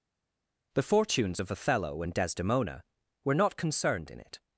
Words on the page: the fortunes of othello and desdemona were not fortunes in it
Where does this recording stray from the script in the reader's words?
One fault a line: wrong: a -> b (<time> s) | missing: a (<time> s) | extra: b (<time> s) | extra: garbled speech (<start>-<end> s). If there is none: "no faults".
wrong: fortunes -> concerned (3.6 s)